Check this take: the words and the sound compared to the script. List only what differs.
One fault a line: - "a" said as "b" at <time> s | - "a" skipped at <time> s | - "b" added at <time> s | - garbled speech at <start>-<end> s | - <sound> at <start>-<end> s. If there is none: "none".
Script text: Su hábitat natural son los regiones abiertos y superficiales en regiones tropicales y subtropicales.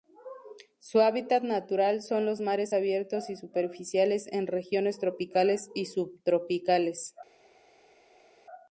- "regiones" said as "mares" at 2.4 s